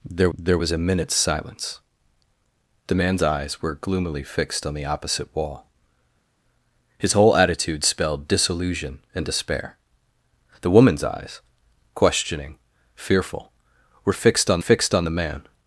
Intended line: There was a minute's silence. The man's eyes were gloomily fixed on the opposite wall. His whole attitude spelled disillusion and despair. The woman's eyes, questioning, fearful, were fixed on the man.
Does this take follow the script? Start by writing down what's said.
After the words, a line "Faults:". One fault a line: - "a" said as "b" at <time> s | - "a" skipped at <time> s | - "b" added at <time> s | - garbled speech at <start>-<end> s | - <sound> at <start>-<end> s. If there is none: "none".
There there was a minute's silence. The man's eyes were gloomily fixed on the opposite wall. His whole attitude spelled disillusion and despair. The woman's eyes, questioning, fearful, were fixed on fixed on the man.
Faults:
- "there" added at 0.4 s
- "fixed on" added at 14.6 s